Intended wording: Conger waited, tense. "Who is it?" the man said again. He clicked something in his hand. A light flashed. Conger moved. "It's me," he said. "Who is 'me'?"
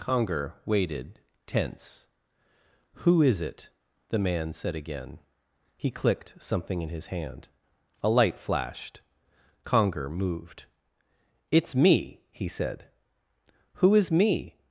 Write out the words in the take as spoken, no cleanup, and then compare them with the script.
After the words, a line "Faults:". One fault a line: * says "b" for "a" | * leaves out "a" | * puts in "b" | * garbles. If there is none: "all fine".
Conger waited, tense. "Who is it?" the man said again. He clicked something in his hand. A light flashed. Conger moved. "It's me," he said. "Who is 'me'?"
Faults:
all fine